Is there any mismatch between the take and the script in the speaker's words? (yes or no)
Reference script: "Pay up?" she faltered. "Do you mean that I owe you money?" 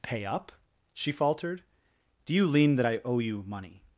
yes